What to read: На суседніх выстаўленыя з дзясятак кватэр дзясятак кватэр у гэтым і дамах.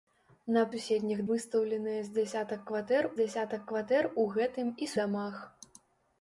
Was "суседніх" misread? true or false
false